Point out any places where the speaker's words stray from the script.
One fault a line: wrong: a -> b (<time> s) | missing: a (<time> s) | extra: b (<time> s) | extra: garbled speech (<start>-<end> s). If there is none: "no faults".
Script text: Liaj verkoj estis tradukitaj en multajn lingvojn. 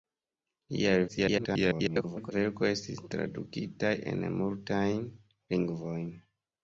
extra: garbled speech (1.1-2.3 s)